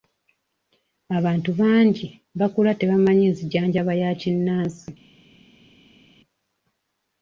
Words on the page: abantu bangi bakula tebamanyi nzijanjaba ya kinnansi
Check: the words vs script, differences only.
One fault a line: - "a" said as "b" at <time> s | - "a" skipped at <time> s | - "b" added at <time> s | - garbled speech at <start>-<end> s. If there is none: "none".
none